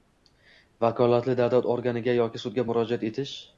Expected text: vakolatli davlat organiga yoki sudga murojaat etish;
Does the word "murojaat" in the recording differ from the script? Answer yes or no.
no